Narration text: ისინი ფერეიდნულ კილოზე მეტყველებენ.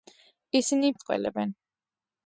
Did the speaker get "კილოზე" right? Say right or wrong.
wrong